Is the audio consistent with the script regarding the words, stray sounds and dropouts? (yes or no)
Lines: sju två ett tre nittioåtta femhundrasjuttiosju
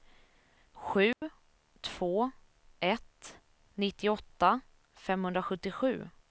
no